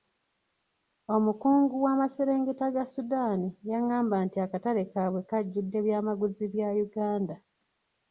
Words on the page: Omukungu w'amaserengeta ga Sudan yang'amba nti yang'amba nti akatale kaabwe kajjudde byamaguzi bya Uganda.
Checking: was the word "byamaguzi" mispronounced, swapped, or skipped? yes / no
no